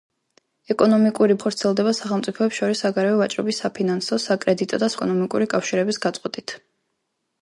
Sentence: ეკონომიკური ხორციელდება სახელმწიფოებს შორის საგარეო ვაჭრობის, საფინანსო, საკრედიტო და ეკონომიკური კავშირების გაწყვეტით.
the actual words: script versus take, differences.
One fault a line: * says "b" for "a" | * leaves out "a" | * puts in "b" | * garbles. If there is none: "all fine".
all fine